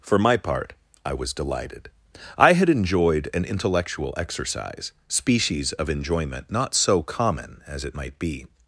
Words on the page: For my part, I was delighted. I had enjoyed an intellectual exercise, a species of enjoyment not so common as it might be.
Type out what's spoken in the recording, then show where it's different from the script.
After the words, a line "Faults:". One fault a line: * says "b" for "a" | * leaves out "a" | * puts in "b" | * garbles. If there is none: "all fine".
For my part, I was delighted. I had enjoyed an intellectual exercise, species of enjoyment not so common as it might be.
Faults:
* leaves out "a"